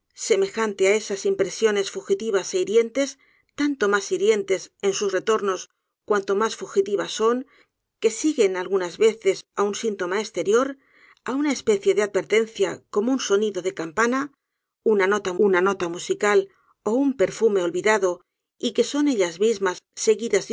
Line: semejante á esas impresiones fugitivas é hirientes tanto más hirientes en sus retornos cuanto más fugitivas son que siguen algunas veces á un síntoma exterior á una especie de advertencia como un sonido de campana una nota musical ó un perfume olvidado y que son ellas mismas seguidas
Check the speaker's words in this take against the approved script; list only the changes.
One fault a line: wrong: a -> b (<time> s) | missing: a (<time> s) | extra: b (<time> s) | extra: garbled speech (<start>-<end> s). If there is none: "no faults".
extra: una nota (15.5 s)